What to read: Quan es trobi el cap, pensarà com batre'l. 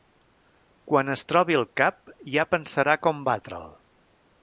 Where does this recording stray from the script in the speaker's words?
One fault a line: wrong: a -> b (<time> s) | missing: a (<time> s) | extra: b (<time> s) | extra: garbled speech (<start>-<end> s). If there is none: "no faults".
extra: ja (2.4 s)